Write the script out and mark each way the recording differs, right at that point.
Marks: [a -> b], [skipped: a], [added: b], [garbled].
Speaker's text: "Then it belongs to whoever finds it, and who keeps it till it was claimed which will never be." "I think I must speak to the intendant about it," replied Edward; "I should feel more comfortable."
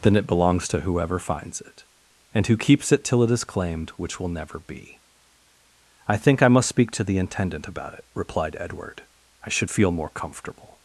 "Then it belongs to whoever finds it, and who keeps it till it [was -> is] claimed which will never be." "I think I must speak to the intendant about it," replied Edward; "I should feel more comfortable."